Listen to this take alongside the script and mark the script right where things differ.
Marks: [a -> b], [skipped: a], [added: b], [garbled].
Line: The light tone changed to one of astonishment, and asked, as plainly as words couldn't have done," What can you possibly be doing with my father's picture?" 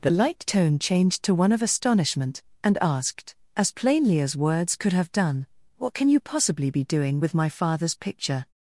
The light tone changed to one of astonishment, and asked, as plainly as words [couldn't -> could] have done," What can you possibly be doing with my father's picture?"